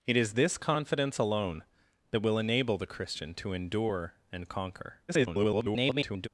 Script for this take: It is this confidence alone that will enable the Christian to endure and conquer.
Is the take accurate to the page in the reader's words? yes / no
no